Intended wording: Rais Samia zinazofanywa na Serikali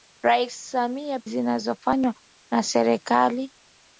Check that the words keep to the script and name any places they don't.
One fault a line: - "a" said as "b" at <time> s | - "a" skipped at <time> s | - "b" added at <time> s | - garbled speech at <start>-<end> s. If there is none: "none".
none